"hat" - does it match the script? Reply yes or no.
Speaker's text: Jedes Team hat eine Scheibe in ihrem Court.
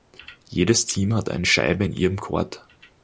yes